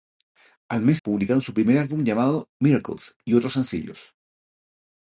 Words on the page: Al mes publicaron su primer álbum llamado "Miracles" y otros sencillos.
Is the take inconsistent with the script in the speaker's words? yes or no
no